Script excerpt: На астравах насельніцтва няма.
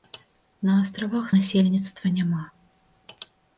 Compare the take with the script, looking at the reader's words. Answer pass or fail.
pass